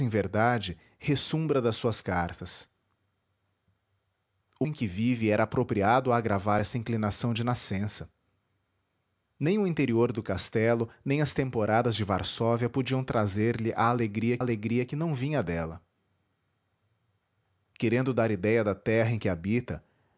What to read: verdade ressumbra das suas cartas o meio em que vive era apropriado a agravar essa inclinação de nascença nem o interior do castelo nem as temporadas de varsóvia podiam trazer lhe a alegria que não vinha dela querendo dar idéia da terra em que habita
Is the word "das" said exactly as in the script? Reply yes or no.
yes